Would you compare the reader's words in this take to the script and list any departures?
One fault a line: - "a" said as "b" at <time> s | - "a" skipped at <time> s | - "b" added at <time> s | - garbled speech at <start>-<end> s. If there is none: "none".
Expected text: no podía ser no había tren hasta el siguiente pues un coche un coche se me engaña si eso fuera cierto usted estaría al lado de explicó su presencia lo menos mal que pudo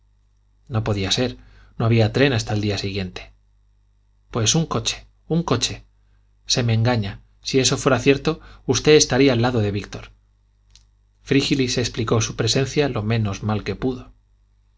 - "día" added at 2.6 s
- "víctor frígilis" added at 9.7 s